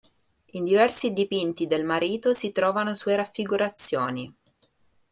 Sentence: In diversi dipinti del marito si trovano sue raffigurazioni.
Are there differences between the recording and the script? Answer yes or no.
no